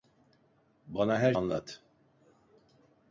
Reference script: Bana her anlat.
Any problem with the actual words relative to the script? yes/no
no